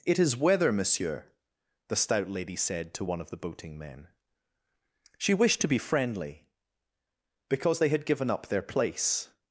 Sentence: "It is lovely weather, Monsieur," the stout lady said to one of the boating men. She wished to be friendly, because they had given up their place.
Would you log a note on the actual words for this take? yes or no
yes